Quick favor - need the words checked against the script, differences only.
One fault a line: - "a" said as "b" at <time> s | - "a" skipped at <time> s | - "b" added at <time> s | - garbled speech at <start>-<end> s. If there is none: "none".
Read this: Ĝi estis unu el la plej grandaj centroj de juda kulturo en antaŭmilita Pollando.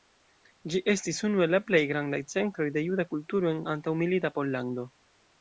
none